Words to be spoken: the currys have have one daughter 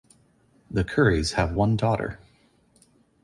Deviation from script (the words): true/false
true